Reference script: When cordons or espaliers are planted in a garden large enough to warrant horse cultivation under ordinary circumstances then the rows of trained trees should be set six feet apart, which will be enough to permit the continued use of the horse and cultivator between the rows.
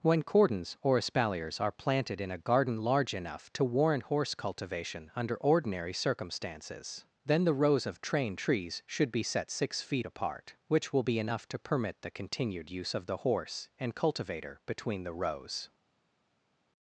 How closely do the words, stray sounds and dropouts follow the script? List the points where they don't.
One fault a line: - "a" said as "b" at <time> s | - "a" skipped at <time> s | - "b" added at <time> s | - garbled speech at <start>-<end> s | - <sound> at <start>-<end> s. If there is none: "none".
none